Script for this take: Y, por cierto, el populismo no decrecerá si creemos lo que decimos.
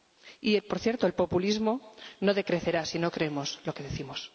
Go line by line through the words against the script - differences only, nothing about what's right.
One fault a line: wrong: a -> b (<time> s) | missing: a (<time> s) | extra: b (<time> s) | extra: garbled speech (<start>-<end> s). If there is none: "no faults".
extra: no (3.0 s)